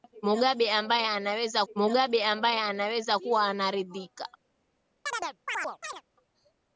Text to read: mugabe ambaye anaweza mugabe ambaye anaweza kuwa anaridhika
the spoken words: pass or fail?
pass